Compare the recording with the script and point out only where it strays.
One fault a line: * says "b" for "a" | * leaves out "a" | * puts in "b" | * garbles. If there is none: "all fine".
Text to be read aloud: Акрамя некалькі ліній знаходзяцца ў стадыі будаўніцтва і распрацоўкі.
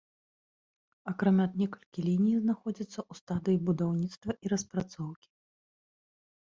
all fine